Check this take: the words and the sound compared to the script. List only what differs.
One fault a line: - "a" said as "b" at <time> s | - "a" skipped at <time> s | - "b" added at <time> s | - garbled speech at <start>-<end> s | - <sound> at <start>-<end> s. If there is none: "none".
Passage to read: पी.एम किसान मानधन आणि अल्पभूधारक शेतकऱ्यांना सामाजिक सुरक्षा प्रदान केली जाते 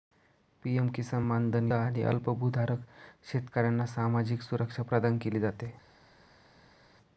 none